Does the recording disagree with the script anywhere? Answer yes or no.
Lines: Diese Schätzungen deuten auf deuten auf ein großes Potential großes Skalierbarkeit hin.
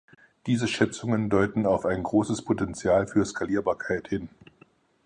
yes